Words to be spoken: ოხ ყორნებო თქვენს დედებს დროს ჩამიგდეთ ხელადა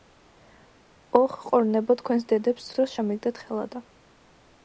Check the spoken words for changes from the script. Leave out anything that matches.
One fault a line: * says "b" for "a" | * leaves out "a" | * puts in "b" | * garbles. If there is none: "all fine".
all fine